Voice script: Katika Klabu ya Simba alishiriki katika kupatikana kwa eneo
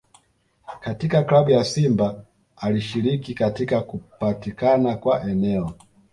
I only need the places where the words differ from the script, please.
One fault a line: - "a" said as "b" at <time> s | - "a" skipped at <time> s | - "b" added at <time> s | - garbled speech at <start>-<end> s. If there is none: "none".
none